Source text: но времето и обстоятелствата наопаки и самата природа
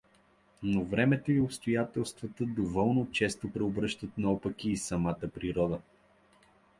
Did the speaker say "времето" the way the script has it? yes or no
yes